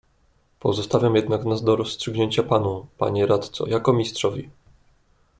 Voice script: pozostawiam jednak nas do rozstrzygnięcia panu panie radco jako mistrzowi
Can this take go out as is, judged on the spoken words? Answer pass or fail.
pass